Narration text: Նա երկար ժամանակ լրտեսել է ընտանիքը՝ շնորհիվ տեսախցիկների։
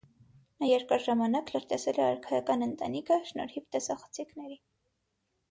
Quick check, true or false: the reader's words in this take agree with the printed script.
false